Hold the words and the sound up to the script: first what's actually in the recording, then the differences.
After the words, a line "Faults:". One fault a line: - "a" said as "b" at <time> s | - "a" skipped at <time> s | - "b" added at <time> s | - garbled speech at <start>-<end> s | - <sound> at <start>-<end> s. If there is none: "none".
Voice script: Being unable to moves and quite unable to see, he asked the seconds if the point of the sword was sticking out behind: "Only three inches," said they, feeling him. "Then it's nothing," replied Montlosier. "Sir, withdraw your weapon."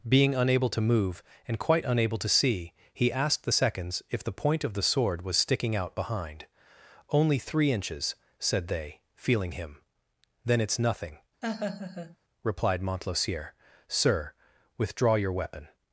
Being unable to move and quite unable to see, he asked the seconds if the point of the sword was sticking out behind: "Only three inches," said they, feeling him. "Then it's nothing," replied Montlosier. "Sir, withdraw your weapon."
Faults:
- "moves" said as "move" at 0.8 s
- laugh at 11.4-12.2 s